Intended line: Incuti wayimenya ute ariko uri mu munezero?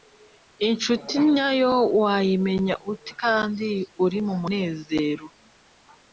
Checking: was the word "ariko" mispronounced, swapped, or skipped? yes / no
yes